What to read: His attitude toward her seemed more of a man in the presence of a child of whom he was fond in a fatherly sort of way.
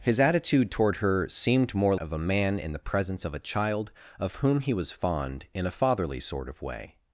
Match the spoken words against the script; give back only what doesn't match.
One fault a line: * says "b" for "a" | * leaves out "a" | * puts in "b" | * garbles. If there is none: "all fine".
all fine